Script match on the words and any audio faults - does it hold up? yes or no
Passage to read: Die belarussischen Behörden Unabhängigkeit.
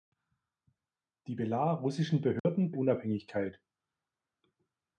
no